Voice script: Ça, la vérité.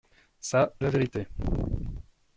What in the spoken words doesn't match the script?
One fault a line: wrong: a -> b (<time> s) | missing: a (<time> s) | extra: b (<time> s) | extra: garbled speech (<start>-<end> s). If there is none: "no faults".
no faults